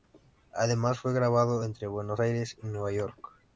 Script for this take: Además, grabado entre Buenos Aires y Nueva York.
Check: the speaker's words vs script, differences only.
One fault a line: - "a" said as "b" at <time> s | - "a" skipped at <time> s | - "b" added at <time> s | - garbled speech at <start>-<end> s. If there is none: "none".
- "fue" added at 1.0 s